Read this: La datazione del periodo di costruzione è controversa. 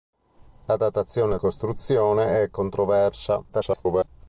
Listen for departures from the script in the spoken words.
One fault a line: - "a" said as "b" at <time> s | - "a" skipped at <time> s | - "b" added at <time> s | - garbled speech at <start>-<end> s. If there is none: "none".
- "del periodo di" skipped at 1.4 s
- garbled speech at 3.5-4.1 s